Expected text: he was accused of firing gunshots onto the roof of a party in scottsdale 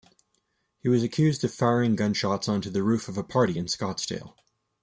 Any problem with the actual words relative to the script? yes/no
no